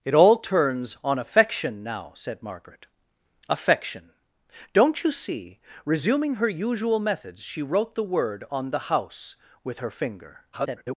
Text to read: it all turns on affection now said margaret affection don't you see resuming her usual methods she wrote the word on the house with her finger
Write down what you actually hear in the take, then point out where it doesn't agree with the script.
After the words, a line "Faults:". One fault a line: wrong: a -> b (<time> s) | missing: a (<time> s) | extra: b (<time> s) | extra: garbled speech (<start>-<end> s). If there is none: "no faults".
it all turns on affection now said margaret affection don't you see resuming her usual methods she wrote the word on the house with her finger [garbled]
Faults:
extra: garbled speech (10.5-11.0 s)